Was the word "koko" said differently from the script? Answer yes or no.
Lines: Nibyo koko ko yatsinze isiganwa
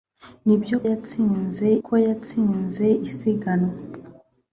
yes